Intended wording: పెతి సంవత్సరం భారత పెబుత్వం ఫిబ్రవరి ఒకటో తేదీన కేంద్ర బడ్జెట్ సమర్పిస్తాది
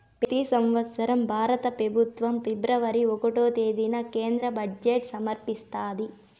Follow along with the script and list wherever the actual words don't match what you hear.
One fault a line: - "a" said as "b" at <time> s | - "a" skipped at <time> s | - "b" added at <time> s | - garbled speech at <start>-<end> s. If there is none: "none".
none